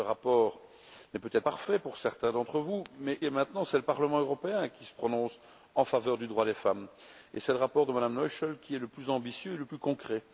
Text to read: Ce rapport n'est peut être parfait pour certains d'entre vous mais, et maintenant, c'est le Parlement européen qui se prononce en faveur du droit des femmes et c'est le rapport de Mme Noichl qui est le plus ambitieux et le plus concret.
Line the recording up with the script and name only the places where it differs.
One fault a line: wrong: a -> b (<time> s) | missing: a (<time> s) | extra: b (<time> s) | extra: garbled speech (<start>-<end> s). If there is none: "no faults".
no faults